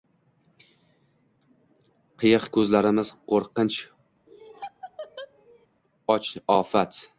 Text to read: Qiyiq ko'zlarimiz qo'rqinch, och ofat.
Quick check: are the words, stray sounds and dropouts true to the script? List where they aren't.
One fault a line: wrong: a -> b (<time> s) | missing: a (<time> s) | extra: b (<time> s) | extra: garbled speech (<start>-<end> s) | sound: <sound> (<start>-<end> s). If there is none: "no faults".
sound: laugh (4.3-5.7 s)